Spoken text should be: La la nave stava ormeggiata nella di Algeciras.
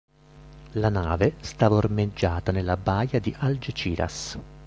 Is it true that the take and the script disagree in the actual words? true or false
true